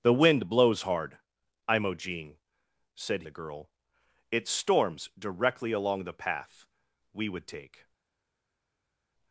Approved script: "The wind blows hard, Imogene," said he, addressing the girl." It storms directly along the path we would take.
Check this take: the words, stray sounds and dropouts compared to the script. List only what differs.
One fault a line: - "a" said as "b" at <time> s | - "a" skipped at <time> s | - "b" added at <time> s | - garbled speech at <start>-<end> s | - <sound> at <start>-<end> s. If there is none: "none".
- "he addressing" skipped at 3.2 s